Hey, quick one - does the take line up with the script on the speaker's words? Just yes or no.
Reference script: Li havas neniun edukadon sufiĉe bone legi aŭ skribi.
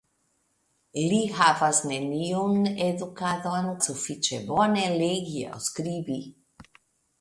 yes